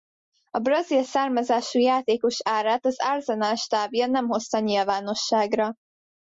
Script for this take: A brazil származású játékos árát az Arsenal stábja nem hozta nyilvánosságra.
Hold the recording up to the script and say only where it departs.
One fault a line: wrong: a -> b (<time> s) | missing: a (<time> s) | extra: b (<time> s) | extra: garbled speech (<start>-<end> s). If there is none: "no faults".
no faults